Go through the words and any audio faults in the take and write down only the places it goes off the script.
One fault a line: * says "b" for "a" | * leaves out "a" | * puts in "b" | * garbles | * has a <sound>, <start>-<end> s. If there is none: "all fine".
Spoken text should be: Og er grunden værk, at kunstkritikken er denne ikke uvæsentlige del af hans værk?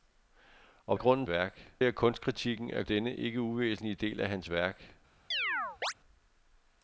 * has a chirp, 5.3-5.9 s